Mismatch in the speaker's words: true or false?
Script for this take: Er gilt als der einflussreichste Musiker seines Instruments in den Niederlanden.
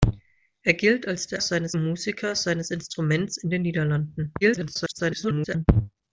true